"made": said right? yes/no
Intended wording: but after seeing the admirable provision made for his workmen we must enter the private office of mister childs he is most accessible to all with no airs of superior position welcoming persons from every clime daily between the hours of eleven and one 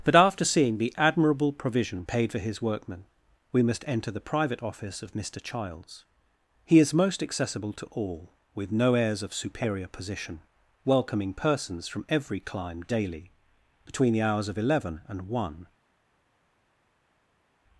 no